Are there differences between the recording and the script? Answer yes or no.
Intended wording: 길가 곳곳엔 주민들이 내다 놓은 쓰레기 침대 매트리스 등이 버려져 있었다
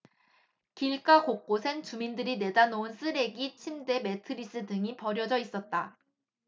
no